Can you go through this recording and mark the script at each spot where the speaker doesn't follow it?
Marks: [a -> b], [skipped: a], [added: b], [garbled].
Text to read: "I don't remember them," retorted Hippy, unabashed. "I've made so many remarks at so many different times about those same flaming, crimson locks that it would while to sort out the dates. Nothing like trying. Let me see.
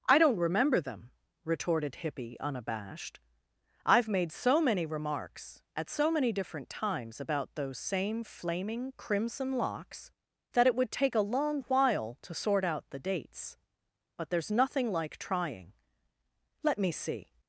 "I don't remember them," retorted Hippy, unabashed. "I've made so many remarks at so many different times about those same flaming, crimson locks that it would [added: take a long] while to sort out the dates. [added: But there's] Nothing like trying. Let me see.